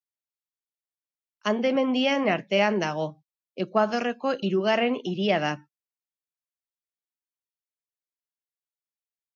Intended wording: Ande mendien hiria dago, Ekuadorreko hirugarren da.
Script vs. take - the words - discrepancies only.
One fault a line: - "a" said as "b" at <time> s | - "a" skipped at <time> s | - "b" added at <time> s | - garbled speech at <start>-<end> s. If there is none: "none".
- "hiria" said as "artean" at 2.4 s
- "hiria" added at 5.1 s